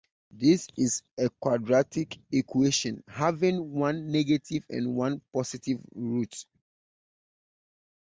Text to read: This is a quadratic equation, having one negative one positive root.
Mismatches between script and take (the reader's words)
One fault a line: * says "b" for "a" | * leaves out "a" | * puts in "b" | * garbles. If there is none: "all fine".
* puts in "and"